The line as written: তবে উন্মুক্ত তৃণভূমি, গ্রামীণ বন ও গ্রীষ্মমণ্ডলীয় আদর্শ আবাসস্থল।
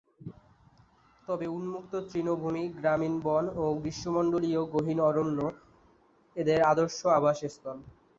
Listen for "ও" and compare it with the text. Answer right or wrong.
right